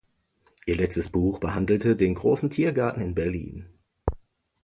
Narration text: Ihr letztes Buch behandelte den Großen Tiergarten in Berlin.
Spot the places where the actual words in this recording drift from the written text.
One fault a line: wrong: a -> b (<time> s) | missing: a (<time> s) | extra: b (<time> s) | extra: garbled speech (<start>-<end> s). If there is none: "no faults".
no faults